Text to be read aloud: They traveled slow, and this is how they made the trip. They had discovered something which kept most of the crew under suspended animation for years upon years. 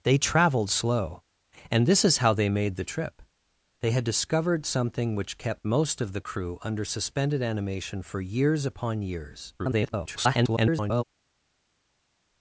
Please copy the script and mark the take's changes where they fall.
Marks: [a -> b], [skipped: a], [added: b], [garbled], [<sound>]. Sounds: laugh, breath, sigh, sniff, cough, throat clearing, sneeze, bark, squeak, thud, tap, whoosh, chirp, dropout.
They traveled slow, and this is how they made the trip. They had discovered something which kept most of the crew under suspended animation for years upon years. [garbled]